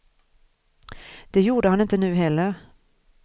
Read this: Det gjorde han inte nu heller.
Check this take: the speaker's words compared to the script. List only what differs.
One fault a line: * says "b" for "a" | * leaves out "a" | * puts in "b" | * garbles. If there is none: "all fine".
all fine